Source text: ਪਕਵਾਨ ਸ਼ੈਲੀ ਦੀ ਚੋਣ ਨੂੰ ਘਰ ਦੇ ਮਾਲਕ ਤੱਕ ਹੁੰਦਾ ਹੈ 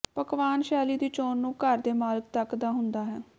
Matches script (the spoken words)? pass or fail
fail